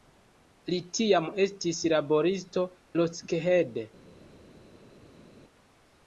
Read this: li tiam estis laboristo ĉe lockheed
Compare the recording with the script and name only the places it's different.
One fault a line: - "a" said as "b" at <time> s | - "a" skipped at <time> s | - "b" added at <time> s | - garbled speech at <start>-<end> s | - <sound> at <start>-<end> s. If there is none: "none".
- "ĉe" skipped at 2.6 s